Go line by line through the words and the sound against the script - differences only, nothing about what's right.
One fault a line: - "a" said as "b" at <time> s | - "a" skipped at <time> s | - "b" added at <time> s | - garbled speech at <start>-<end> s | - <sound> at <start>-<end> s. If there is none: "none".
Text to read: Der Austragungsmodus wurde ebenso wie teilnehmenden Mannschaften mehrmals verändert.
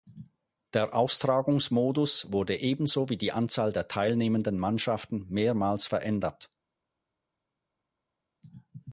- "die Anzahl der" added at 3.2 s